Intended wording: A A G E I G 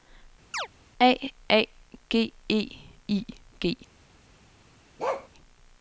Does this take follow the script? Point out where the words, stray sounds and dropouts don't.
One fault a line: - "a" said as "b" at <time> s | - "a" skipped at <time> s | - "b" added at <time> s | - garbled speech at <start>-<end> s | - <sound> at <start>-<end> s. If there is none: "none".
- chirp at 0.5-0.7 s
- bark at 5.0-5.3 s